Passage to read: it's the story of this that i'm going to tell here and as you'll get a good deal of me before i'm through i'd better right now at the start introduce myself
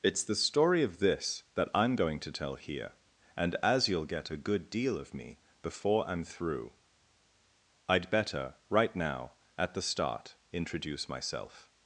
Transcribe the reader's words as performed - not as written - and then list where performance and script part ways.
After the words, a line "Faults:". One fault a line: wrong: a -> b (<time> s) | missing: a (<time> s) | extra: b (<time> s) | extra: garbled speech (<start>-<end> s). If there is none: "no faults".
it's the story of this that i'm going to tell here and as you'll get a good deal of me before i'm through i'd better right now at the start introduce myself
Faults:
no faults